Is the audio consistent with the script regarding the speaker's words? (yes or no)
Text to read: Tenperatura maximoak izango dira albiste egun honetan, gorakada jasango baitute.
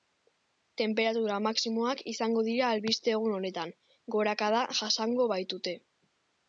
yes